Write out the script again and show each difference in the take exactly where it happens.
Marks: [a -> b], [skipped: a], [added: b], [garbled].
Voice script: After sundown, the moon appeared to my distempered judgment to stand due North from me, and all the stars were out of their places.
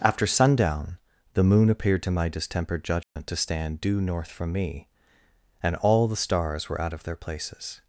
After sundown, the moon appeared to my distempered judgment to stand due North from me, and all the stars were out of their places.